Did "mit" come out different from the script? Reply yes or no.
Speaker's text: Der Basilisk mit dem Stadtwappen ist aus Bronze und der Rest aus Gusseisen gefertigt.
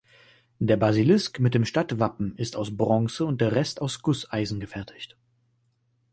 no